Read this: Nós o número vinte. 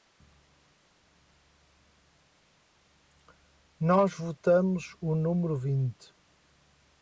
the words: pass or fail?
fail